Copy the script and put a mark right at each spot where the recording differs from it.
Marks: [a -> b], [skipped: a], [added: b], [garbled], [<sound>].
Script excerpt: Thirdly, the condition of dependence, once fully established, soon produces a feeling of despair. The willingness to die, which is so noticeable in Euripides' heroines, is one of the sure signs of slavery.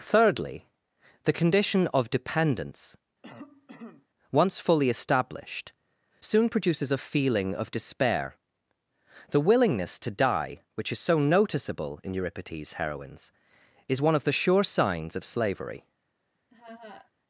Thirdly, the condition of dependence, [cough] once fully established, soon produces a feeling of despair. The willingness to die, which is so noticeable in Euripides' heroines, is one of the sure signs of slavery. [laugh]